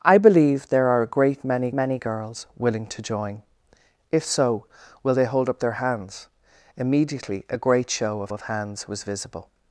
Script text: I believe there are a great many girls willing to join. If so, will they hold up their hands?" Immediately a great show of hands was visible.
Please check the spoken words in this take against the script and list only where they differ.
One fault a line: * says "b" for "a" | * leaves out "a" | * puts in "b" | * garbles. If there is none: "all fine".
* puts in "many"
* puts in "of"